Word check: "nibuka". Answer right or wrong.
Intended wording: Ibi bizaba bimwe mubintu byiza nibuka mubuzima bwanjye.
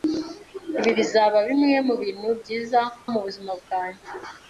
wrong